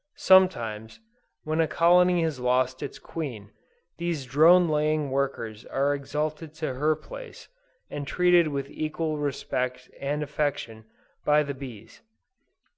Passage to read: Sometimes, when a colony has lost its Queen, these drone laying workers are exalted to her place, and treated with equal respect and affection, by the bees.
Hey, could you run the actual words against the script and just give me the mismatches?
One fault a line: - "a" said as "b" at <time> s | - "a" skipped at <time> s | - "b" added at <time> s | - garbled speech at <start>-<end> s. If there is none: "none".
none